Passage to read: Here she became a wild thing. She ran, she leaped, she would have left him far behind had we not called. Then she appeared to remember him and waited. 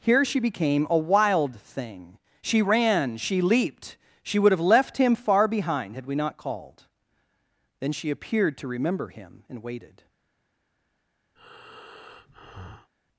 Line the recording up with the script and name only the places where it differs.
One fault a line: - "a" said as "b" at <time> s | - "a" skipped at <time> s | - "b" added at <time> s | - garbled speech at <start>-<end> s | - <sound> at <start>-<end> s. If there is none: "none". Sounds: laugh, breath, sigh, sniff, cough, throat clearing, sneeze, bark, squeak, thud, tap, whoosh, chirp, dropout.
- breath at 11.4-12.9 s